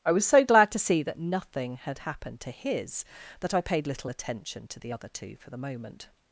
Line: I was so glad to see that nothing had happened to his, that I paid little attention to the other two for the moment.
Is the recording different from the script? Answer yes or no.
no